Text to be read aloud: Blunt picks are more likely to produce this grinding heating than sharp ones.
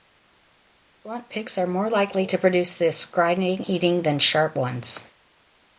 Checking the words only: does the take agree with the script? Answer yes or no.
yes